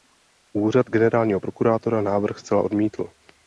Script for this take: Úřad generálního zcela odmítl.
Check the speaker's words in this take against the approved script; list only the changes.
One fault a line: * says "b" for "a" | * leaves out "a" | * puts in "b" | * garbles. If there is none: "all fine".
* puts in "prokurátora návrh"